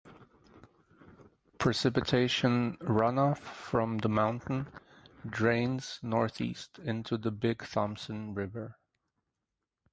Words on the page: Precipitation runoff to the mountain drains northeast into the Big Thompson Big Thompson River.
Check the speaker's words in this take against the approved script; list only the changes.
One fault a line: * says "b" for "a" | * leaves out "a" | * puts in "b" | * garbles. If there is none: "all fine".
* says "from" for "to"
* leaves out "Big Thompson"